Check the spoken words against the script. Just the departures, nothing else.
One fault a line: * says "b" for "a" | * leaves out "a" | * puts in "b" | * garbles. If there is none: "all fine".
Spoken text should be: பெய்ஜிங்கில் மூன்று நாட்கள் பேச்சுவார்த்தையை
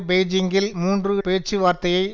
* leaves out "நாட்கள்"